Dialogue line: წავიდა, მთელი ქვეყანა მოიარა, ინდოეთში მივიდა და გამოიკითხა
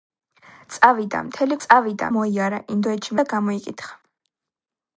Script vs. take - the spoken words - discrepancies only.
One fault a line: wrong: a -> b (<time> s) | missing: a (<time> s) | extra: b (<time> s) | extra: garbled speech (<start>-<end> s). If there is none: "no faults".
wrong: ქვეყანა -> წავიდა (1.6 s)
missing: მივიდა (3.2 s)